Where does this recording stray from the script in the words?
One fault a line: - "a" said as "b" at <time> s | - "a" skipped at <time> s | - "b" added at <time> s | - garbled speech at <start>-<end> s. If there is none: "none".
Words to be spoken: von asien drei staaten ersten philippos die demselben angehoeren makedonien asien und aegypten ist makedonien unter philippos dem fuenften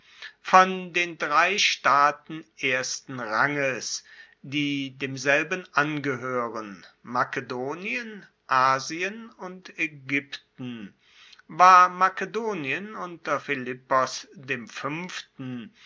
- "asien" said as "den" at 0.9 s
- "philippos" said as "ranges" at 3.2 s
- "ist" said as "war" at 11.5 s